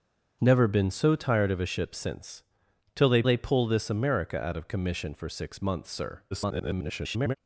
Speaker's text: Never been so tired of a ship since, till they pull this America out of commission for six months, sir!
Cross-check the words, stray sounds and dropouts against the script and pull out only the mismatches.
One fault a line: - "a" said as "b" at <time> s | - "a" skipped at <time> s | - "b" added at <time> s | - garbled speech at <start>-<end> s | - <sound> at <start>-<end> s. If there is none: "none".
- "they" added at 3.2 s
- garbled speech at 6.3-7.4 s